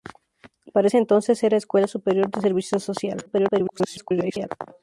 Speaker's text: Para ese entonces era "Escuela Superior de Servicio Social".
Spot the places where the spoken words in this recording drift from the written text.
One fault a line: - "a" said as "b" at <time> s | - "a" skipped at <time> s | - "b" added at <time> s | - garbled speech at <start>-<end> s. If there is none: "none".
- garbled speech at 3.3-4.5 s